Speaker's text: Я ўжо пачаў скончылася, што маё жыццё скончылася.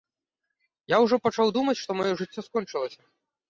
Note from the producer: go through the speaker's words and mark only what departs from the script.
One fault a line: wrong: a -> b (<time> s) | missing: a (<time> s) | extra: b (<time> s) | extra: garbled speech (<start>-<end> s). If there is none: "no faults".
wrong: скончылася -> думаць (1.6 s)